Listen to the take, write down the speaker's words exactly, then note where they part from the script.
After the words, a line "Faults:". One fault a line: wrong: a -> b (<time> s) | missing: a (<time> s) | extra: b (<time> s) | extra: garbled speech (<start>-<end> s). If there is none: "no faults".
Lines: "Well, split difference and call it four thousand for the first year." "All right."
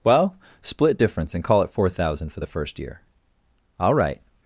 "Well, split difference and call it four thousand for the first year." "All right."
Faults:
no faults